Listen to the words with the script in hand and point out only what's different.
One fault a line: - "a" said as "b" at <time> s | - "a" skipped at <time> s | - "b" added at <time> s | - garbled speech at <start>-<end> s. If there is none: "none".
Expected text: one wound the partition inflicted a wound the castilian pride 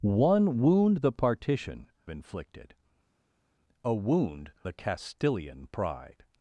none